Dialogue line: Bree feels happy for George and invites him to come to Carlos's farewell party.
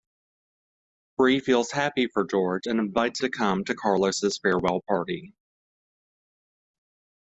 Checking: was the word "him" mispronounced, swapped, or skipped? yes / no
yes